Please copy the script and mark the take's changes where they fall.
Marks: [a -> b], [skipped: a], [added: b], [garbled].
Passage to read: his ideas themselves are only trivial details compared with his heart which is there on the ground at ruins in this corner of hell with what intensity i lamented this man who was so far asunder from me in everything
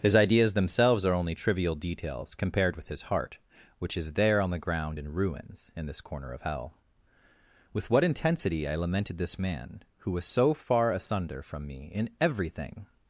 his ideas themselves are only trivial details compared with his heart which is there on the ground [at -> in] ruins in this corner of hell with what intensity i lamented this man who was so far asunder from me in everything